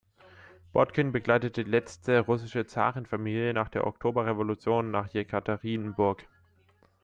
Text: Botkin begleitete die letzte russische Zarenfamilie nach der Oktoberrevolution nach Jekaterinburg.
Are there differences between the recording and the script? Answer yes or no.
yes